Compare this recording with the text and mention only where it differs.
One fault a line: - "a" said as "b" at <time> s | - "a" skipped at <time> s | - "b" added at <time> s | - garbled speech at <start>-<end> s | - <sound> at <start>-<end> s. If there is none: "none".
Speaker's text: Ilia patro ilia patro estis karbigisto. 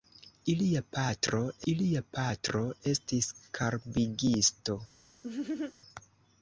- laugh at 5.2-5.7 s